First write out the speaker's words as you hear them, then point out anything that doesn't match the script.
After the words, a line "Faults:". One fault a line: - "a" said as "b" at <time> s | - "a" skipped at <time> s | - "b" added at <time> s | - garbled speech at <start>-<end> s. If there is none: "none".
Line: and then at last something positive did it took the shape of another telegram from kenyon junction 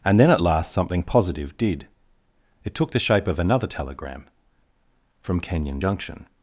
and then at last something positive did it took the shape of another telegram from kenyon junction
Faults:
none